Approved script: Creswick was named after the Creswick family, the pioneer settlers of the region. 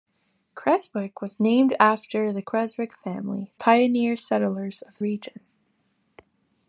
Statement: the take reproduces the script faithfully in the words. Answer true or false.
false